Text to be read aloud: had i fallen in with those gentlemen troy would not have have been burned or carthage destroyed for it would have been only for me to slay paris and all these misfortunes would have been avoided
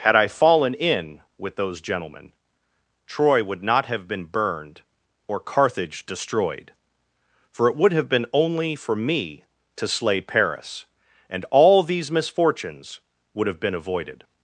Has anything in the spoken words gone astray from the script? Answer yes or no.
yes